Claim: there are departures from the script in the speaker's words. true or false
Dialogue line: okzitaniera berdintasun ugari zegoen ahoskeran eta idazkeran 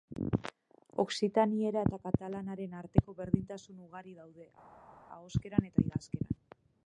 true